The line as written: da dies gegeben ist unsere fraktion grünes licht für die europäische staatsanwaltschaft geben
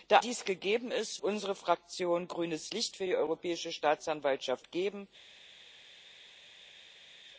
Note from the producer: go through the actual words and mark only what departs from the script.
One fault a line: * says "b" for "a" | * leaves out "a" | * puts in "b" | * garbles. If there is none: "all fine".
all fine